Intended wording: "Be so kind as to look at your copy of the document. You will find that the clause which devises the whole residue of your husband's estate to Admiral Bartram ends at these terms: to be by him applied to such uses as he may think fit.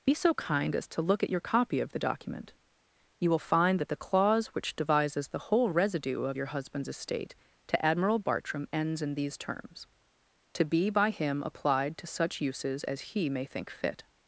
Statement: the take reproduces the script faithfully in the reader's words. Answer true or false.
false